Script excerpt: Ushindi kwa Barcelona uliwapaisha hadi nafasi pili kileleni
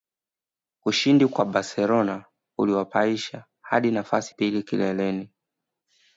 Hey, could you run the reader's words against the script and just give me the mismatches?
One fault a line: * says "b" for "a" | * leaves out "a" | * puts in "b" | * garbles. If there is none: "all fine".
all fine